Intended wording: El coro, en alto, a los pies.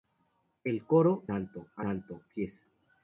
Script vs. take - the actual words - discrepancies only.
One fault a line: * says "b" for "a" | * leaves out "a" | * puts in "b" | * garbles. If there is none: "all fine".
* leaves out "en"
* says "alto" for "los"